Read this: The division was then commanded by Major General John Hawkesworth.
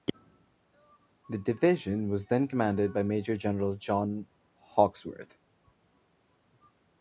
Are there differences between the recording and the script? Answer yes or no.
no